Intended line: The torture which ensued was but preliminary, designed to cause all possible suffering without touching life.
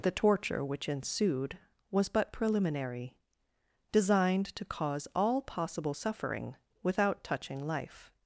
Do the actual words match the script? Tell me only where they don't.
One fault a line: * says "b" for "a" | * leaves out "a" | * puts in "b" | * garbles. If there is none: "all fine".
all fine